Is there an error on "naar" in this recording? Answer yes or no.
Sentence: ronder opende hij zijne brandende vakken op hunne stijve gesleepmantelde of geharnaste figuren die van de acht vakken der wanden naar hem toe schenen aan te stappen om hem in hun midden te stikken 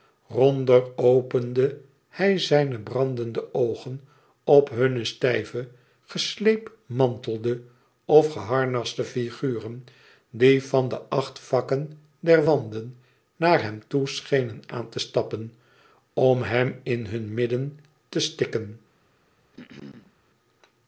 no